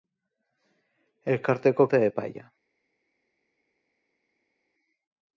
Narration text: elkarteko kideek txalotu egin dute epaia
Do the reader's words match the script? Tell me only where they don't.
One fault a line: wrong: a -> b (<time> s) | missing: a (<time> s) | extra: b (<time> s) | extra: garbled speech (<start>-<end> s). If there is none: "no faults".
missing: kideek txalotu egin (1.9 s)